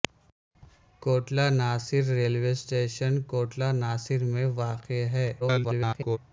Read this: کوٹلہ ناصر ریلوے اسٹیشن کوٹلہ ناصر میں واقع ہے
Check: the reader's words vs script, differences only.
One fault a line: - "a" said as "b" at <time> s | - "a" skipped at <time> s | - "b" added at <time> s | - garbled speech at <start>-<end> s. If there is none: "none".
- garbled speech at 5.4-6.2 s